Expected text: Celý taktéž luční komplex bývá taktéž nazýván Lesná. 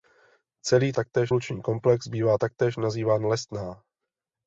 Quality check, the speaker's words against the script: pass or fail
pass